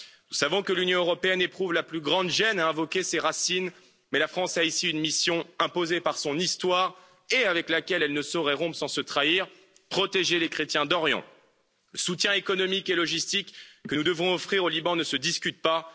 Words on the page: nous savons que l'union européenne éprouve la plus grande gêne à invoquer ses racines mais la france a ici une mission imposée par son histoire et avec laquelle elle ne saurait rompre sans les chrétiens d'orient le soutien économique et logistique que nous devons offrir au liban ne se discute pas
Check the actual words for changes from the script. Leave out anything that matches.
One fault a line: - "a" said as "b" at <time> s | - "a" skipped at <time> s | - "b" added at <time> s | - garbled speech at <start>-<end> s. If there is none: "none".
- "se trahir protéger" added at 8.9 s